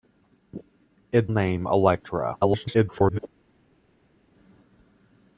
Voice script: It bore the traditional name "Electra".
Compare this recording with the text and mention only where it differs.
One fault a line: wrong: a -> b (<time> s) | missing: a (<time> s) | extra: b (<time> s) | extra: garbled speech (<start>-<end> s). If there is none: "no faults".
missing: bore the traditional (1.3 s)
extra: garbled speech (2.4-3.2 s)